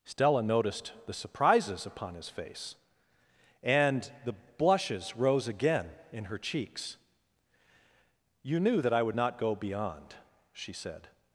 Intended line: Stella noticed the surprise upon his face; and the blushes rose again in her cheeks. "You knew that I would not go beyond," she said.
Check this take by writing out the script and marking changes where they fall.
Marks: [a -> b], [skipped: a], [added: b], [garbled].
Stella noticed the [surprise -> surprises] upon his face; and the blushes rose again in her cheeks. "You knew that I would not go beyond," she said.